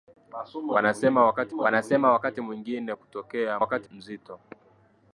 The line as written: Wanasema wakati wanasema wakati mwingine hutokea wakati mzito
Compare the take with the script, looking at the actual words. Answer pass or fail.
pass